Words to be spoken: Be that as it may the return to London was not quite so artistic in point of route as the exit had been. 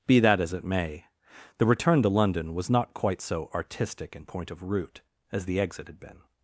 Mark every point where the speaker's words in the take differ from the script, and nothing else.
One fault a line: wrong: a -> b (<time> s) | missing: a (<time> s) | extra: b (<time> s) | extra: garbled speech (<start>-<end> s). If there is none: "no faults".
no faults